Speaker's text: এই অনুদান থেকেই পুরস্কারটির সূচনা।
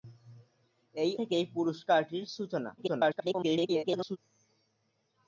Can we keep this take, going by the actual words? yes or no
no